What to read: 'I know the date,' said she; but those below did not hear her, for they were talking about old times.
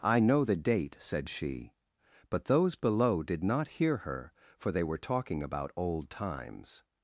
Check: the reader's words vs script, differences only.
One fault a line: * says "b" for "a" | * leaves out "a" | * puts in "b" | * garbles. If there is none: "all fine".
all fine